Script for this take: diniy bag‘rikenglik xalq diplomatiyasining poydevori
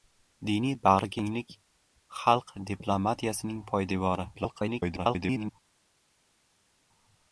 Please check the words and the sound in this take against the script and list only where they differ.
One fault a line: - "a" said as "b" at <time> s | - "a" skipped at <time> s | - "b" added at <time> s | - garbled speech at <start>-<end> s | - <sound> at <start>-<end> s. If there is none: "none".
- garbled speech at 4.3-5.5 s